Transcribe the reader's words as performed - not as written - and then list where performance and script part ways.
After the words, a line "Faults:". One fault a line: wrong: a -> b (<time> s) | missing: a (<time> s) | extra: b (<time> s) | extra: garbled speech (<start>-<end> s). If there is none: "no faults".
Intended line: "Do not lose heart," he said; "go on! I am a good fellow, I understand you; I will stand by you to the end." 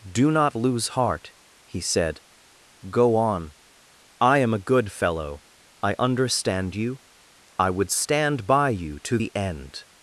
"Do not lose heart," he said; "go on! I am a good fellow, I understand you; I would stand by you to the end."
Faults:
wrong: will -> would (7.7 s)